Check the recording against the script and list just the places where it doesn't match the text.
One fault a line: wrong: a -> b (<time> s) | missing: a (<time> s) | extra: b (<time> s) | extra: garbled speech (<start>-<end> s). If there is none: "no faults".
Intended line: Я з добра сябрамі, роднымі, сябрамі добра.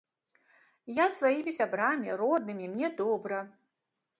wrong: добра -> сваімі (1.2 s)
wrong: сябрамі -> мне (2.8 s)